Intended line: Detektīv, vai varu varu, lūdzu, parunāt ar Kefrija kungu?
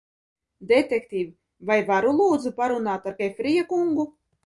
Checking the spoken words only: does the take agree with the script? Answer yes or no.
no